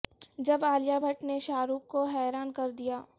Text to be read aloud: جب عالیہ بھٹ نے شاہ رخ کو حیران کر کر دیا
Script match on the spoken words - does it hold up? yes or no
no